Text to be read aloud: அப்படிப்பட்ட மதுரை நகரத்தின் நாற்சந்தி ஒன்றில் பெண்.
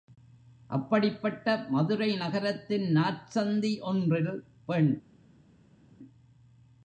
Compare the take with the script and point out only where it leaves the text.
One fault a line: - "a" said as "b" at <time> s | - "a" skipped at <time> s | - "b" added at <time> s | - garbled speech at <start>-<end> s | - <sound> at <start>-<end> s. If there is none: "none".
none